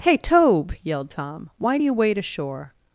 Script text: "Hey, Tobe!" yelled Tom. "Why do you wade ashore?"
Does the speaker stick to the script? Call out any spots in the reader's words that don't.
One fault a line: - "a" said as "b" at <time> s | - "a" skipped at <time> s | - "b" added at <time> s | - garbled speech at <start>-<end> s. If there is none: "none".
none